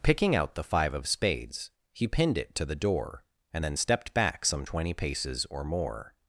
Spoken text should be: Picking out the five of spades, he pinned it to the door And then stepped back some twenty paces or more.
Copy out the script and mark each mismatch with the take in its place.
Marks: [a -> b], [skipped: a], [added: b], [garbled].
Picking out the five of spades, he pinned it to the door And then stepped back some twenty paces or more.